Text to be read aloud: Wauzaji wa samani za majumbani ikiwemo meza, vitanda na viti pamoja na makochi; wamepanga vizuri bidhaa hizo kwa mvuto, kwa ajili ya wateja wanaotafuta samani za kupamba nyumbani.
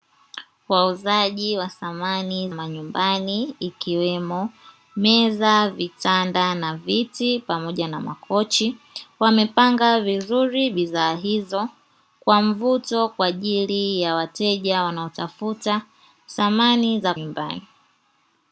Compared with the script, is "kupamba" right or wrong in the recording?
wrong